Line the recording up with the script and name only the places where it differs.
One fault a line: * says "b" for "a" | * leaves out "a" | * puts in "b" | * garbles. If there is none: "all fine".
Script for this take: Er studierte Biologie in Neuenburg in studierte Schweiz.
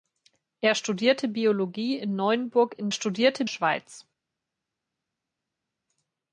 all fine